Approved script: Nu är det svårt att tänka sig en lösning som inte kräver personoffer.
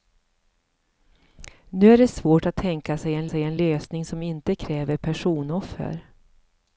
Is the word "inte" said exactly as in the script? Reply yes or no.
yes